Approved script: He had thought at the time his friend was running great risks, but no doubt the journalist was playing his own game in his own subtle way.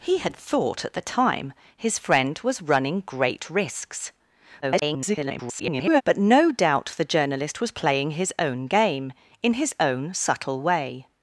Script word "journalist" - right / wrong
right